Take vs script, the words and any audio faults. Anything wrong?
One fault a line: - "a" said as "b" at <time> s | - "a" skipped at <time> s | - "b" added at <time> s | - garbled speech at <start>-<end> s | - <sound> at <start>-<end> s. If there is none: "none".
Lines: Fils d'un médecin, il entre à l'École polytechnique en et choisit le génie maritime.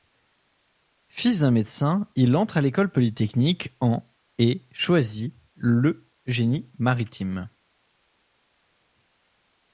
none